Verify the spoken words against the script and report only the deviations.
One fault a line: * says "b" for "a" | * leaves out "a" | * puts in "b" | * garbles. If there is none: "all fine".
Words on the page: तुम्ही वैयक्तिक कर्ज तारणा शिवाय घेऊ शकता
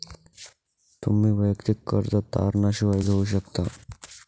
all fine